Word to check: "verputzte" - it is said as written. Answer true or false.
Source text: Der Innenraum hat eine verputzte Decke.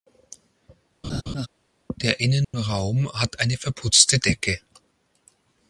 true